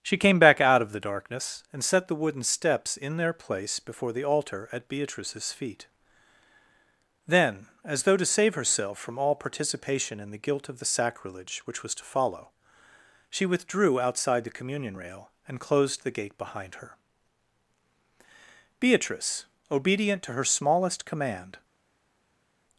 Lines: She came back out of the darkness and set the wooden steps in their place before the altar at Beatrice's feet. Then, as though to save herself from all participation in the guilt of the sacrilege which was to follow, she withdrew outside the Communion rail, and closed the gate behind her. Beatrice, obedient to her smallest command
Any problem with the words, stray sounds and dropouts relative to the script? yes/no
no